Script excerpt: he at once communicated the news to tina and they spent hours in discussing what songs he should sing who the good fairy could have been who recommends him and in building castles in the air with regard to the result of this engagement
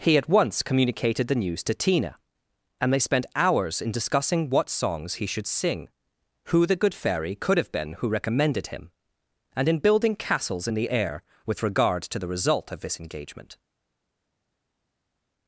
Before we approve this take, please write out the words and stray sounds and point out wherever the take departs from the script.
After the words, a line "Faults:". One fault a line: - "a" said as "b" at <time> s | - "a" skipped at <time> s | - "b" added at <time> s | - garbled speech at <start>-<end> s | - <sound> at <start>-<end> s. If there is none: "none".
he at once communicated the news to tina and they spent hours in discussing what songs he should sing who the good fairy could have been who recommended him and in building castles in the air with regard to the result of this engagement
Faults:
- "recommends" said as "recommended" at 8.1 s